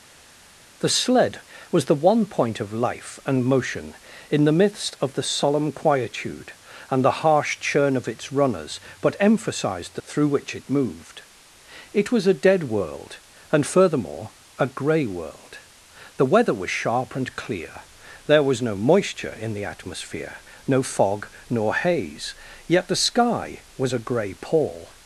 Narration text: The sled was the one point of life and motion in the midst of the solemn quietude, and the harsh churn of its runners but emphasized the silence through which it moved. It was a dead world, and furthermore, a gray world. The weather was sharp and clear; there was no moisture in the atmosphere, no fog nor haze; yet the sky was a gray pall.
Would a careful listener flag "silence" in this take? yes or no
yes